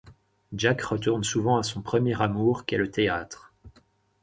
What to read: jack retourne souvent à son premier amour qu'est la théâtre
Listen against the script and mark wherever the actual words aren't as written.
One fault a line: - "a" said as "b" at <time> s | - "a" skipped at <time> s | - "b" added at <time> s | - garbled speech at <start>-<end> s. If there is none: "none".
- "la" said as "le" at 2.8 s